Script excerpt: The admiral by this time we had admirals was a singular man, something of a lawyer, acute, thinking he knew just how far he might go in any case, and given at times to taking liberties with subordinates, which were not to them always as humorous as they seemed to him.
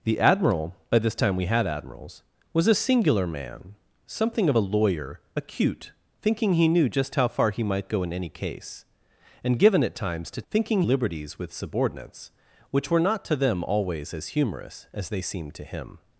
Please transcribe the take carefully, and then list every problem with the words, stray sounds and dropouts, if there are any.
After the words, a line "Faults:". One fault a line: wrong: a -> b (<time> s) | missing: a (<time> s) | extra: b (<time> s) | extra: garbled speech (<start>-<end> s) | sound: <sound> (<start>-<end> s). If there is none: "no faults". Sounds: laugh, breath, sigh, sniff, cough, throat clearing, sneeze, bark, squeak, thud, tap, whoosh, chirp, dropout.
The admiral by this time we had admirals was a singular man, something of a lawyer, acute, thinking he knew just how far he might go in any case, and given at times to thinking liberties with subordinates, which were not to them always as humorous as they seemed to him.
Faults:
wrong: taking -> thinking (10.5 s)